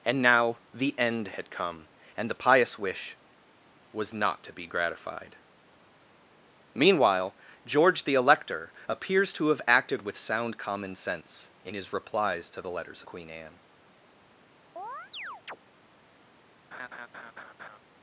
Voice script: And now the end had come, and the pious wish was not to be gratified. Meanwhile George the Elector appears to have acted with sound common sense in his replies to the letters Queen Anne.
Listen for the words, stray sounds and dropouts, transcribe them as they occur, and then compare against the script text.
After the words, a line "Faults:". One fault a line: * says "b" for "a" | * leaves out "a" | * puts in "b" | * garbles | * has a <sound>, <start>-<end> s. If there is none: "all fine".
And now the end had come, and the pious wish was not to be gratified. Meanwhile George the Elector appears to have acted with sound common sense in his replies to the letters Queen Anne.
Faults:
* has a chirp, 14.8-15.6 s
* has a laugh, 16.7-17.8 s